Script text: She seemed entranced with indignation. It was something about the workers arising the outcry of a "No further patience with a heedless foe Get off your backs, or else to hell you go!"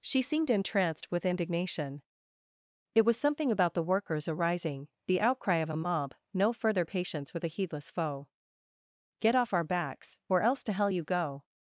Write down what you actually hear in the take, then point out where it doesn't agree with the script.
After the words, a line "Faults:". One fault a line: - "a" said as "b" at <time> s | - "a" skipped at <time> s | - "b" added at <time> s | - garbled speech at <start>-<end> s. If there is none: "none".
She seemed entranced with indignation. It was something about the workers arising the outcry of a mob "No further patience with a heedless foe Get off our backs, or else to hell you go!"
Faults:
- "mob" added at 5.8 s
- "your" said as "our" at 9.5 s